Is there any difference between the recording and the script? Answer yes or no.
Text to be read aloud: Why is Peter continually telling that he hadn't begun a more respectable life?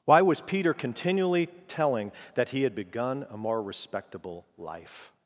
yes